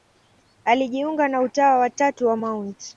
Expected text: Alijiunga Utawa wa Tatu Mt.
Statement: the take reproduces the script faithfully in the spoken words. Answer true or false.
false